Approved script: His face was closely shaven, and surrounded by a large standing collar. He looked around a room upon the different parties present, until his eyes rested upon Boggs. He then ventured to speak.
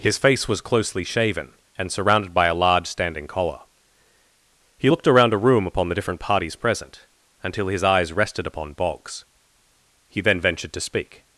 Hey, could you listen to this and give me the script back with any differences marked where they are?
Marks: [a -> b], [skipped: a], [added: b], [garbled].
His face was closely shaven, and surrounded by a large standing collar. He looked around a room upon the different parties present, until his eyes rested upon Boggs. He then ventured to speak.